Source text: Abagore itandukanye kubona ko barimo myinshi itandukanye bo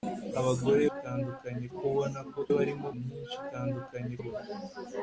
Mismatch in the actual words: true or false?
false